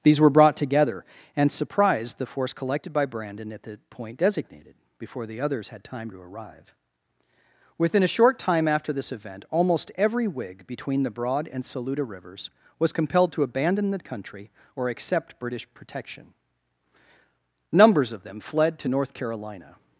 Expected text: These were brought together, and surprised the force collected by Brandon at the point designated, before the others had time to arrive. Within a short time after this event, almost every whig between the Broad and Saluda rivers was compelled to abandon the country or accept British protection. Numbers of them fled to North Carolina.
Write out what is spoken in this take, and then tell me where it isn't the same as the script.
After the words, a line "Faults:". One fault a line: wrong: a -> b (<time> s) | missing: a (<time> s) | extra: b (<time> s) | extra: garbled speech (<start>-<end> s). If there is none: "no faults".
These were brought together, and surprised the force collected by Brandon at the point designated, before the others had time to arrive. Within a short time after this event, almost every whig between the Broad and Saluda rivers was compelled to abandon the country or accept British protection. Numbers of them fled to North Carolina.
Faults:
no faults